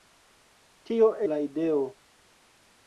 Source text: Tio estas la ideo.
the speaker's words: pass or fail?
fail